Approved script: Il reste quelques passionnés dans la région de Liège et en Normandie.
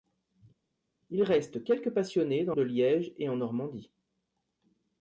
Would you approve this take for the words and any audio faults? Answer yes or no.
no